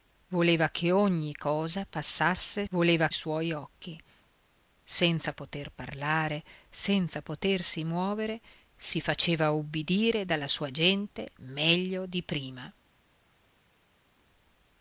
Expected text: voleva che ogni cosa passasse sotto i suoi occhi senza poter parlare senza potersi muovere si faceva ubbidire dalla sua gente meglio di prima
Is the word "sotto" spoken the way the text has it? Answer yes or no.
no